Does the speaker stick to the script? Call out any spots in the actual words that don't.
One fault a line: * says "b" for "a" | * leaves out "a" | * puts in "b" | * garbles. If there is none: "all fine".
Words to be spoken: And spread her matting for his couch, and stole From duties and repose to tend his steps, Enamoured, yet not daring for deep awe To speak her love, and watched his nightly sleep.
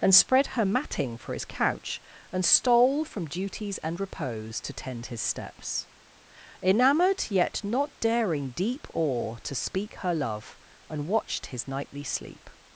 * leaves out "for"